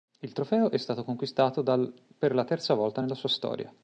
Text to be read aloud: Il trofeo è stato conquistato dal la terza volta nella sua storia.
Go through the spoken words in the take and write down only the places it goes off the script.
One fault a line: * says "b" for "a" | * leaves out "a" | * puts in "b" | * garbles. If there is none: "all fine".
* puts in "per"